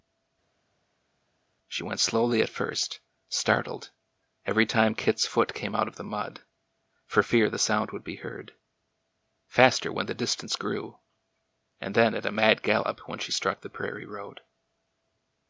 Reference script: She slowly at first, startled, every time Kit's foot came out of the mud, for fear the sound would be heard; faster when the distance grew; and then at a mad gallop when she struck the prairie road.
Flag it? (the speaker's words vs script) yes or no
yes